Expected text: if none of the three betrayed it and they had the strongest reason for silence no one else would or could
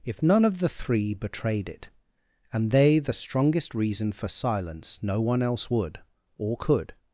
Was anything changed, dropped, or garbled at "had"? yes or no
yes